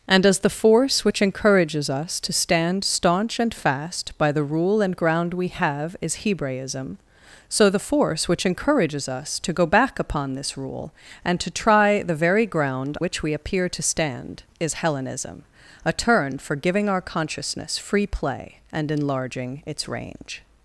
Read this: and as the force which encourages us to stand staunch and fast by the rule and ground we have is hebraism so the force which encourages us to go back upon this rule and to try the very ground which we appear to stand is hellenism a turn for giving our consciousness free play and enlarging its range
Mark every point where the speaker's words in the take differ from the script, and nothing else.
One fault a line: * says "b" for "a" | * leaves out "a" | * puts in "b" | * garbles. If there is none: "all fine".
all fine